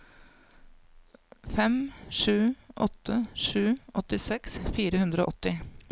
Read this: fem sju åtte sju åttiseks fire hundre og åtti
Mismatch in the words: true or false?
false